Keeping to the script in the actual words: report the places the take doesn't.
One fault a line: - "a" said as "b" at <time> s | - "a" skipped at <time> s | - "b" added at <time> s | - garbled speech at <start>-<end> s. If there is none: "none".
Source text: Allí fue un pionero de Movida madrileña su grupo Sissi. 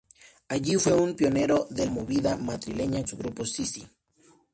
none